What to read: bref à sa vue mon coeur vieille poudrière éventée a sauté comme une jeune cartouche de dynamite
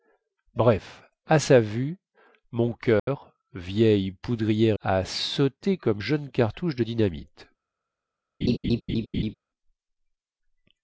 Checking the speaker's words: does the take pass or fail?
fail